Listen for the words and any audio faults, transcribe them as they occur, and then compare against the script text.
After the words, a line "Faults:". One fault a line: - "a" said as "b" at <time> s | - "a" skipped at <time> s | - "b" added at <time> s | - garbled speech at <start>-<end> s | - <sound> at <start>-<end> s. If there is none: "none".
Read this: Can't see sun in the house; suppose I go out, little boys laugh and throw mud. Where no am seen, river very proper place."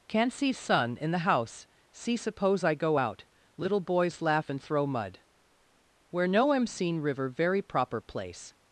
Can't see sun in the house; see suppose I go out, little boys laugh and throw mud. Where no am seen, river very proper place."
Faults:
- "see" added at 1.9 s